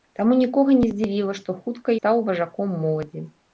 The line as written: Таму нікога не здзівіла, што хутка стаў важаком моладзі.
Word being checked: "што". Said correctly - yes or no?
yes